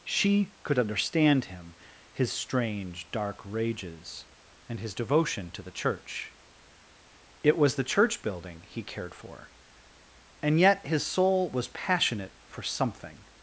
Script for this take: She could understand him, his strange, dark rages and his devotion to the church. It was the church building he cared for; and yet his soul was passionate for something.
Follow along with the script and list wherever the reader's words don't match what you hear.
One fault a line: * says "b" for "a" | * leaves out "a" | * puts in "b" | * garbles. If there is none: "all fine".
all fine